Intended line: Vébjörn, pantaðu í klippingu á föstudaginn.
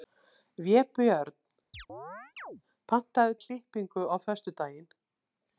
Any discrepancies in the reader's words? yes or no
no